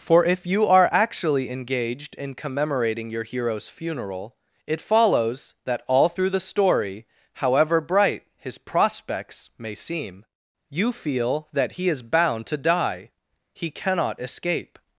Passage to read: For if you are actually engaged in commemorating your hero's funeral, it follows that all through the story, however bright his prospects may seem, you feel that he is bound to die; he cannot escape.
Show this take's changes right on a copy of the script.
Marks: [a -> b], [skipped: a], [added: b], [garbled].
For if you are actually engaged in commemorating your hero's funeral, it follows that all through the story, however bright his prospects may seem, you feel that he is bound to die; he cannot escape.